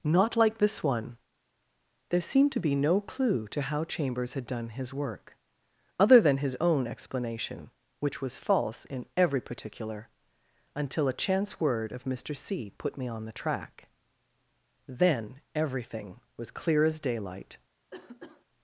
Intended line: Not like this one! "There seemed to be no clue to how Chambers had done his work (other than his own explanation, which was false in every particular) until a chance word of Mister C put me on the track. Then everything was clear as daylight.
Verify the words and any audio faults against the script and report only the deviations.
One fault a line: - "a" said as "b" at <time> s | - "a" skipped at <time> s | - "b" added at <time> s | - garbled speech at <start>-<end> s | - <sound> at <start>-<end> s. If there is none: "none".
- cough at 17.9-18.5 s